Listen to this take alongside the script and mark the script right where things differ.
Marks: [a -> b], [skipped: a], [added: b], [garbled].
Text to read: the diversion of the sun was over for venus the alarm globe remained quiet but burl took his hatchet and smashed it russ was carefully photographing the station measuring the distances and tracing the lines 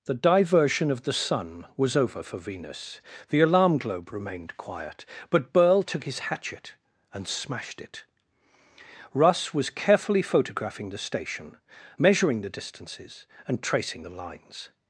the diversion of the sun was over for venus the alarm globe remained quiet but burl took his hatchet and smashed it russ was carefully photographing the station measuring the distances and tracing the lines